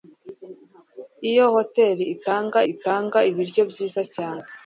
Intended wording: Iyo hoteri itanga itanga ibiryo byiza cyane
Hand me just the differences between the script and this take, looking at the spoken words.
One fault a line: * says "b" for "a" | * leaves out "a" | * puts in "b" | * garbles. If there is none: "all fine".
all fine